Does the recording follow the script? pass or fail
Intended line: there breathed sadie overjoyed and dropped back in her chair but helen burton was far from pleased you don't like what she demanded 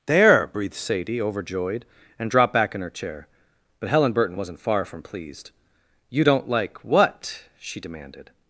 fail